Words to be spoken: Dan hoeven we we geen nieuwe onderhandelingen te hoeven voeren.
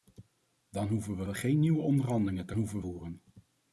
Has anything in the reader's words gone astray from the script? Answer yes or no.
no